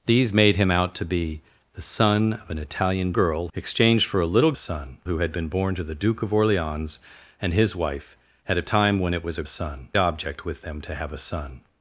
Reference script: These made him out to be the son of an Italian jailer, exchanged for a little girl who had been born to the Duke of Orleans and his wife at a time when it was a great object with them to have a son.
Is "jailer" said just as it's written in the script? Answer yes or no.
no